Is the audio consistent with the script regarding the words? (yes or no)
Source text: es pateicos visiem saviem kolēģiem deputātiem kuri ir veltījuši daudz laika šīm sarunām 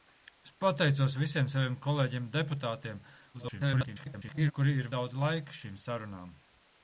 no